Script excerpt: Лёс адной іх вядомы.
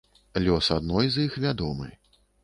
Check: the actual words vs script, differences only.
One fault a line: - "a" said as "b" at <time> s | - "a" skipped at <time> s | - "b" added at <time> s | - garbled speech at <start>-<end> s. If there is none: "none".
- "з" added at 1.1 s